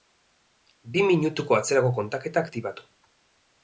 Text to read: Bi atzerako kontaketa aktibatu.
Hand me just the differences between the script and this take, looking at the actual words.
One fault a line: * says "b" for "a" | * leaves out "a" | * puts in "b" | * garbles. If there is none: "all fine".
* puts in "minutuko"